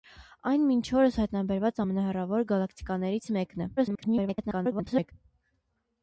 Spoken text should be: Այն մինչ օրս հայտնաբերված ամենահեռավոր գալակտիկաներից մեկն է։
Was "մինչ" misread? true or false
false